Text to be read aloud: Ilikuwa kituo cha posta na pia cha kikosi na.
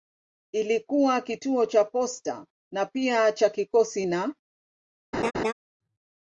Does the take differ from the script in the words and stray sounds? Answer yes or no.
yes